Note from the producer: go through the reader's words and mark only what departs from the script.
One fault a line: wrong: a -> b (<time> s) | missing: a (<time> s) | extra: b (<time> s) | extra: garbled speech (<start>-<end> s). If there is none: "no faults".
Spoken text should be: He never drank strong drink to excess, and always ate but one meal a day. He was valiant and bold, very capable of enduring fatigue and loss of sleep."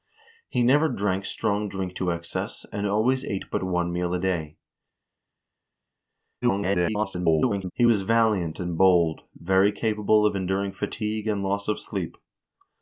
extra: garbled speech (6.4-7.7 s)